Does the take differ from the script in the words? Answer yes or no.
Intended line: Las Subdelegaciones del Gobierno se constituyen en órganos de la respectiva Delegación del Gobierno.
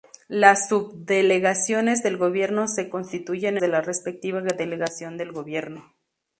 yes